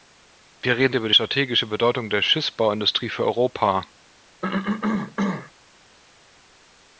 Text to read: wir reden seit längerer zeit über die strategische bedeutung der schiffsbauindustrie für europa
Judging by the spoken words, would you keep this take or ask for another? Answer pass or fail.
fail